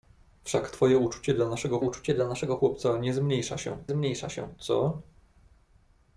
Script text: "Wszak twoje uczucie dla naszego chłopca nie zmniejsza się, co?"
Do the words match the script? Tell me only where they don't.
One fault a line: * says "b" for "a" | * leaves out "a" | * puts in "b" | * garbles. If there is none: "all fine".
* puts in "uczucie dla naszego"
* puts in "zmniejsza się"